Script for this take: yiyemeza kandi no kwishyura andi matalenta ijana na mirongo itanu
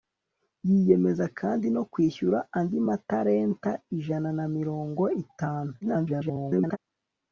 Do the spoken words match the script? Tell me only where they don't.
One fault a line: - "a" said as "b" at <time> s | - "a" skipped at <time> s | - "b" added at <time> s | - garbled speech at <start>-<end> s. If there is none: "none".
- garbled speech at 5.8-6.8 s